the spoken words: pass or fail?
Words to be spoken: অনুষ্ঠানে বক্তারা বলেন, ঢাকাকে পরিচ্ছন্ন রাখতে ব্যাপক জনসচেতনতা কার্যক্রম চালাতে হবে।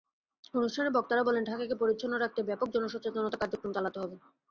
pass